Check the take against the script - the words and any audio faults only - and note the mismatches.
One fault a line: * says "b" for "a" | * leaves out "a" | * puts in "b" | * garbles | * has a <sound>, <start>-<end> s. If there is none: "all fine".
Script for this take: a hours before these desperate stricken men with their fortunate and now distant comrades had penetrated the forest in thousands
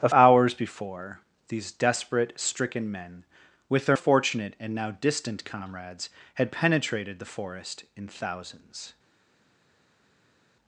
all fine